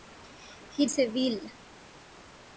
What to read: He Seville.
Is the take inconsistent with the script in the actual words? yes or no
no